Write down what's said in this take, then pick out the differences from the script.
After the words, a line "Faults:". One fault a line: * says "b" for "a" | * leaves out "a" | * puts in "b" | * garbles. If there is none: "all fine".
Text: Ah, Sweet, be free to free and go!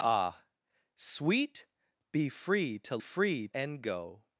Ah, Sweet, be free to free and go!
Faults:
all fine